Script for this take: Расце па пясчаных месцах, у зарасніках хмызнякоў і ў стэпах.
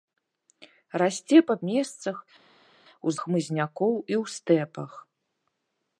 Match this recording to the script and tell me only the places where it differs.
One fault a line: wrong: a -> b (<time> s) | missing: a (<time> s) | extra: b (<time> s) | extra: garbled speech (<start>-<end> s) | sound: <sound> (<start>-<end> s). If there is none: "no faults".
missing: пясчаных (1.6 s)
missing: зарасніках (3.1 s)